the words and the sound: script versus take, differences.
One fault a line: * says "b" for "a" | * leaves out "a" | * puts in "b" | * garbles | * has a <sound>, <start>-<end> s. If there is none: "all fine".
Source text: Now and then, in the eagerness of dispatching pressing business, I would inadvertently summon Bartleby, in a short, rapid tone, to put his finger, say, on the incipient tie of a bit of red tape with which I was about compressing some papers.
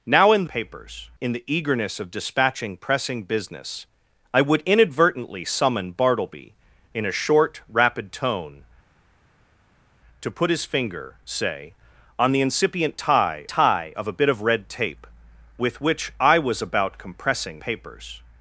* says "papers" for "then"
* puts in "tie"
* leaves out "some"